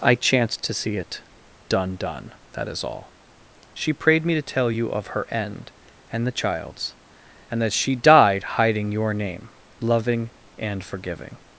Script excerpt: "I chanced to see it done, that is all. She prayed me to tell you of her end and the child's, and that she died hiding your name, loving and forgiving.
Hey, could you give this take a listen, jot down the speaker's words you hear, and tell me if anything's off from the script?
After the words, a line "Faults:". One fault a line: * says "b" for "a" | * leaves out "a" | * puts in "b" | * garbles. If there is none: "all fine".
"I chanced to see it done done, that is all. She prayed me to tell you of her end and the child's, and that she died hiding your name, loving and forgiving.
Faults:
* puts in "done"